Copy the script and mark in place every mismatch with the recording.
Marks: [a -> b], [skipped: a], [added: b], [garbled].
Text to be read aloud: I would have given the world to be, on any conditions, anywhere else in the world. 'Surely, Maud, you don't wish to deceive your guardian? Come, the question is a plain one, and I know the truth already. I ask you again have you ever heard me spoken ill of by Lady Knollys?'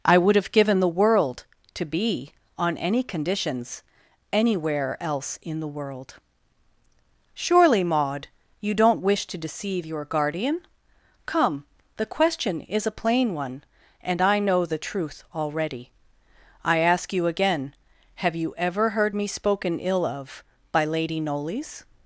I would have given the world to be, on any conditions, anywhere else in the world. 'Surely, Maud, you don't wish to deceive your guardian? Come, the question is a plain one, and I know the truth already. I ask you again have you ever heard me spoken ill of by Lady Knollys?'